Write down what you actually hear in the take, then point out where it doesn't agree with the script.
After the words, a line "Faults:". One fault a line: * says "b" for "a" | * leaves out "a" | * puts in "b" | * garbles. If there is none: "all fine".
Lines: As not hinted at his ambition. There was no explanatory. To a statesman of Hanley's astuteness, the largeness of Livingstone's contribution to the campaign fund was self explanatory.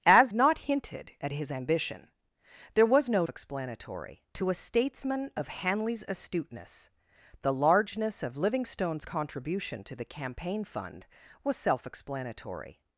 As not hinted at his ambition. There was no explanatory. To a statesman of Hanley's astuteness, the largeness of Livingstone's contribution to the campaign fund was self explanatory.
Faults:
all fine